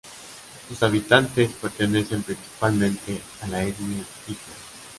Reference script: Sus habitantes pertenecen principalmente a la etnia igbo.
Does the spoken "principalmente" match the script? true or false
true